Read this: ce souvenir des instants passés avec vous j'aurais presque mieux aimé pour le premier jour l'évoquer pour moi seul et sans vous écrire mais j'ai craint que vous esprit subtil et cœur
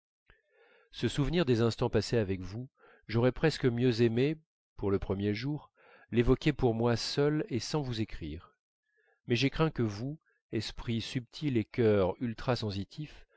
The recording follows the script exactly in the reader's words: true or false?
true